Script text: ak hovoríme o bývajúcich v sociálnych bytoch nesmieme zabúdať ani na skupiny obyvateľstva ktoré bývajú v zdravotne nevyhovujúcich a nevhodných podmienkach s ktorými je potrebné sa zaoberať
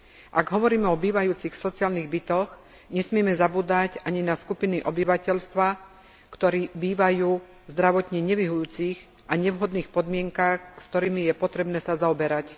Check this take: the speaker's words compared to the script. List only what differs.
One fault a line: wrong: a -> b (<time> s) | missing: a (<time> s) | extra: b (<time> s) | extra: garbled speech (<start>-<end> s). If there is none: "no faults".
no faults